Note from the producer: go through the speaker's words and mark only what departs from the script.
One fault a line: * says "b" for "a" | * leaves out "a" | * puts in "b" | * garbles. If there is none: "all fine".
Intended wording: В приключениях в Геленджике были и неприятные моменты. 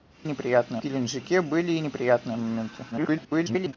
* says "неприятные" for "приключениях"
* garbles